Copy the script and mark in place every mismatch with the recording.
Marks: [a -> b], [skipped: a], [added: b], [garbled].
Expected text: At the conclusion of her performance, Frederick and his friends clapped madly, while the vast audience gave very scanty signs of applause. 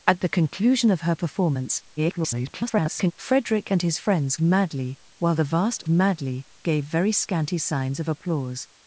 At the conclusion of her performance, [garbled] Frederick and his friends [skipped: clapped] madly, while the vast [audience -> madly] gave very scanty signs of applause.